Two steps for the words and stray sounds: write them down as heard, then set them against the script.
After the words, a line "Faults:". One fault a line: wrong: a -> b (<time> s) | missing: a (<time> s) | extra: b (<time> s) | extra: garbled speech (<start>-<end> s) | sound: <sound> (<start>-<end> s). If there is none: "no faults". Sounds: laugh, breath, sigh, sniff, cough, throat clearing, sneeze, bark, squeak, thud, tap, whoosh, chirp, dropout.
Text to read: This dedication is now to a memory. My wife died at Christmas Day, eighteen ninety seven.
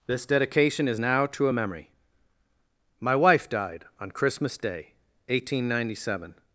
This dedication is now to a memory. My wife died on Christmas Day, eighteen ninety seven.
Faults:
wrong: at -> on (4.0 s)